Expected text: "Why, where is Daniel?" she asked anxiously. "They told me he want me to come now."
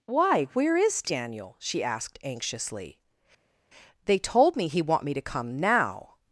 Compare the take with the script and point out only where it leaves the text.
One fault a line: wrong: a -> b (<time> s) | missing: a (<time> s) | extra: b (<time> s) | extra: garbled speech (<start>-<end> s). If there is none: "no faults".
no faults